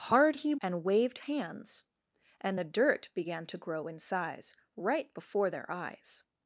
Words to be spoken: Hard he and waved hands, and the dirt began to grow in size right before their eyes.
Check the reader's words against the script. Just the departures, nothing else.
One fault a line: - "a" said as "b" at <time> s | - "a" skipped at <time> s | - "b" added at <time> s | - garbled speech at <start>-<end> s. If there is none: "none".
none